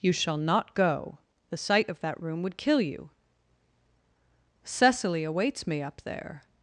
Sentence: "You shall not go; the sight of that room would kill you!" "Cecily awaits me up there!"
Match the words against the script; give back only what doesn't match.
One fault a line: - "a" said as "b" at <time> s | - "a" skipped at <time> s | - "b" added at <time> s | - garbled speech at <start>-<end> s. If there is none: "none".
none